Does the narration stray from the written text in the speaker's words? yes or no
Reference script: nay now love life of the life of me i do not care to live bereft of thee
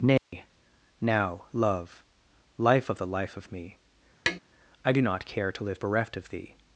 no